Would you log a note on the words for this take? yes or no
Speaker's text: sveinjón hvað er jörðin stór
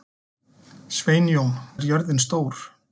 yes